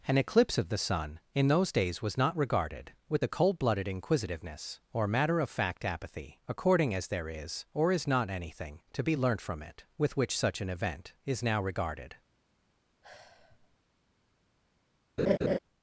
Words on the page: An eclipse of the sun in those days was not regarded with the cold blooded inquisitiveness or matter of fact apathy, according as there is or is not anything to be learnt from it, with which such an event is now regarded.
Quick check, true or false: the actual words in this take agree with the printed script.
true